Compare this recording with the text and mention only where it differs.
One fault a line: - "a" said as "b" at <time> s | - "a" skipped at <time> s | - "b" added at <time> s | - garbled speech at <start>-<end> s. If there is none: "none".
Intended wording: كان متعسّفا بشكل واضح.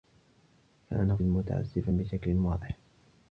none